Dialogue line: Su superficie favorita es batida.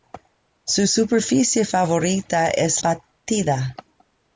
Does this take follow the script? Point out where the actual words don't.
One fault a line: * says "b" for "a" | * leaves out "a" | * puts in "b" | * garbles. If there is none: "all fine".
all fine